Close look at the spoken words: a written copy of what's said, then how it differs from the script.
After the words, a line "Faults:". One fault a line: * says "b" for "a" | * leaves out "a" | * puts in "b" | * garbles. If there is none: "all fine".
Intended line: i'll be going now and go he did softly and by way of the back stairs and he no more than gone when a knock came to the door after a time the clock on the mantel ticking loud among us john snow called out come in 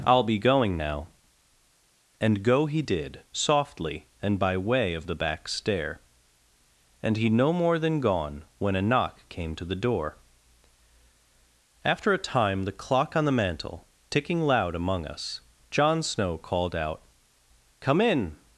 i'll be going now and go he did softly and by way of the back stair and he no more than gone when a knock came to the door after a time the clock on the mantel ticking loud among us john snow called out come in
Faults:
* says "stair" for "stairs"